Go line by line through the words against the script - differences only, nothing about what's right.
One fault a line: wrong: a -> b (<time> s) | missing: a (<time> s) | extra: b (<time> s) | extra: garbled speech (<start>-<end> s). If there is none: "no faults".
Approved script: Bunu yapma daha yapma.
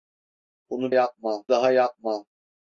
no faults